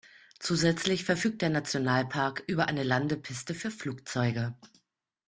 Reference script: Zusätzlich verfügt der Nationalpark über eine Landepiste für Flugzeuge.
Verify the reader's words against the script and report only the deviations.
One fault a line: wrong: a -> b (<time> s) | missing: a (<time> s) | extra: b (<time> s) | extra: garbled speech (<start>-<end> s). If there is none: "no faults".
no faults